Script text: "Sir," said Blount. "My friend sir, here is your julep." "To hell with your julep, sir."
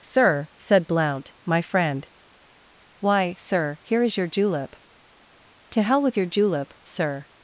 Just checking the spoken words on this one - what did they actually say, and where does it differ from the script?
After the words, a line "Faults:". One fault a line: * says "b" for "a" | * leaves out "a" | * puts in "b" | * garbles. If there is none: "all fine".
"Sir," said Blount. "My friend why, sir, here is your julep." "To hell with your julep, sir."
Faults:
* puts in "why"